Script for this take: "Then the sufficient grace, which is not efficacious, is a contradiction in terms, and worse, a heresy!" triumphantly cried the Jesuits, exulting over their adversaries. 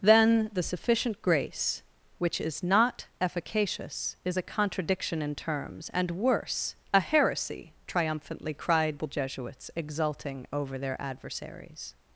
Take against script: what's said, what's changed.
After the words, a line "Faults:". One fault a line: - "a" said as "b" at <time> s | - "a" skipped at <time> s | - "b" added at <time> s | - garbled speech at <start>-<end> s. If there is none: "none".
"Then the sufficient grace, which is not efficacious, is a contradiction in terms, and worse, a heresy!" triumphantly cried the Jesuits, exulting over their adversaries.
Faults:
none